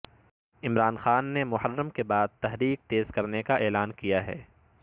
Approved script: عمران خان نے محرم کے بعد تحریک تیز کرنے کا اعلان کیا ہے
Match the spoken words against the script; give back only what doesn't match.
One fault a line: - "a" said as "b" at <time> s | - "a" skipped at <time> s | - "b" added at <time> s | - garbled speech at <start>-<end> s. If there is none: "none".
none